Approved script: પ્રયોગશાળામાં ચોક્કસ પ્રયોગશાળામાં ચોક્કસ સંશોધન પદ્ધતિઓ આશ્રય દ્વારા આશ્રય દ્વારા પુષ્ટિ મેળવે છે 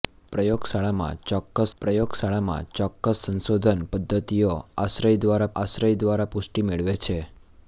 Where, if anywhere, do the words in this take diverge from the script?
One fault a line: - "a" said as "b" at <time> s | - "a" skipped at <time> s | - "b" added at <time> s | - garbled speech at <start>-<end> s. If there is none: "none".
none